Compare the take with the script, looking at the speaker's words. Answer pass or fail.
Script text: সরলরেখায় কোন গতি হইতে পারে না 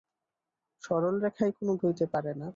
fail